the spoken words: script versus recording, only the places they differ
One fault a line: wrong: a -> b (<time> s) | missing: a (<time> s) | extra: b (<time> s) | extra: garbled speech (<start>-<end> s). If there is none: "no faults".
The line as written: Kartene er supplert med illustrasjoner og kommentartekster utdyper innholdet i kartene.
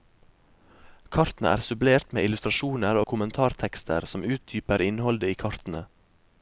extra: som (4.1 s)